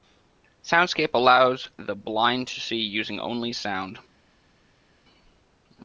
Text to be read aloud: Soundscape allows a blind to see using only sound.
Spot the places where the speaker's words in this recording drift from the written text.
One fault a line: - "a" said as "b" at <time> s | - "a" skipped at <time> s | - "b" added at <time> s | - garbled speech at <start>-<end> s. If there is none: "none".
- "a" said as "the" at 1.8 s